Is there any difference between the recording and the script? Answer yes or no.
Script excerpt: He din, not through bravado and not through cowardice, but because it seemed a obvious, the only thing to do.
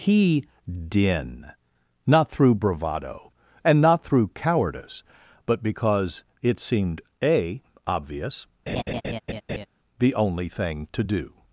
no